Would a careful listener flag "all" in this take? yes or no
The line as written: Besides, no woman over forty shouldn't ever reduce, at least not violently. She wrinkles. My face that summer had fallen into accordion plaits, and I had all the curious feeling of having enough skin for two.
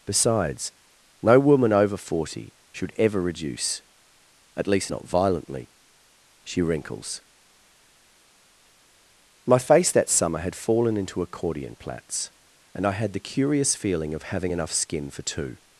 yes